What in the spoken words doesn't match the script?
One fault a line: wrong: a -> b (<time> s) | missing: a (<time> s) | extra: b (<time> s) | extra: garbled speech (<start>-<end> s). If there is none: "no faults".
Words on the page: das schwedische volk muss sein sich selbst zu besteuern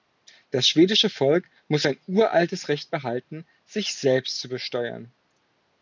extra: uraltes recht behalten (2.1 s)